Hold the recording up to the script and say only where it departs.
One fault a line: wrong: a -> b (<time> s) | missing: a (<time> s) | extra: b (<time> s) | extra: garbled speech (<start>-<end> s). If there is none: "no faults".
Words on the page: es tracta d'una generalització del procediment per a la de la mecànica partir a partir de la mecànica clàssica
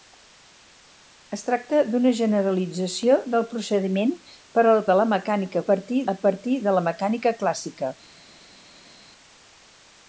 no faults